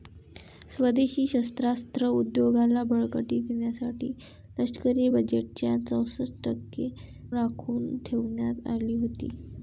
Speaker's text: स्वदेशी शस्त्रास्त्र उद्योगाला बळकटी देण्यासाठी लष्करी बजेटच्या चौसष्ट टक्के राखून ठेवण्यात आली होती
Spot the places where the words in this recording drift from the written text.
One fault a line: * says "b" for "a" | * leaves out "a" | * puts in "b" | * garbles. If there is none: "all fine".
all fine